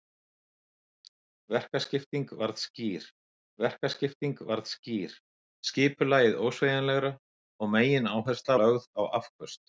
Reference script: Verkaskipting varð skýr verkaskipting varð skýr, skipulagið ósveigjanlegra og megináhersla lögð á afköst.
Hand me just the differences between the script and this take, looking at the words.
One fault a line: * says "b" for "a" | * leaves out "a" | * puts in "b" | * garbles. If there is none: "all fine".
all fine